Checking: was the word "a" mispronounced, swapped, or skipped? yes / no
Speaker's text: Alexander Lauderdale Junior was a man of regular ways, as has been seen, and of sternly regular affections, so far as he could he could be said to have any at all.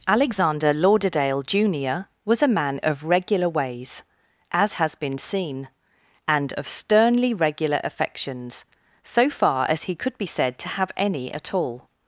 no